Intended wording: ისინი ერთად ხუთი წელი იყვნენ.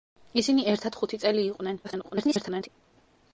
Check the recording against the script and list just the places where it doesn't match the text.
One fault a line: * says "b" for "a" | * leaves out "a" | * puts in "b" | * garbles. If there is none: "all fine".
* garbles